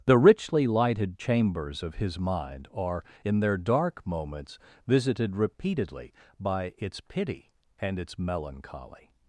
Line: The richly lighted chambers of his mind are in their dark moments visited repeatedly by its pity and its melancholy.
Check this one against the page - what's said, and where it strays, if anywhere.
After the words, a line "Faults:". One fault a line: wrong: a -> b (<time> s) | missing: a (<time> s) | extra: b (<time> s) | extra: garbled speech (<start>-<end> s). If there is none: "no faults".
The richly lighted chambers of his mind are in their dark moments visited repeatedly by its pity and its melancholy.
Faults:
no faults